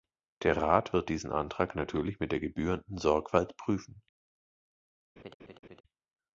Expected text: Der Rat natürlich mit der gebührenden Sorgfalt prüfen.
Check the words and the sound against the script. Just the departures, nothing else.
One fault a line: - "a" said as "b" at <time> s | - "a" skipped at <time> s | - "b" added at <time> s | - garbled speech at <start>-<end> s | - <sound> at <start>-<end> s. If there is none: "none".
- "wird diesen Antrag" added at 0.9 s
- laugh at 5.2-5.8 s